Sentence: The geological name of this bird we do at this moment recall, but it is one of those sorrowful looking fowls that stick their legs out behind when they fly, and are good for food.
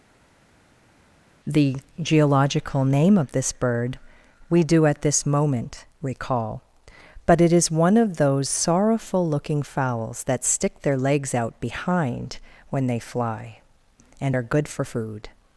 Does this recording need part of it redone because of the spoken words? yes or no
no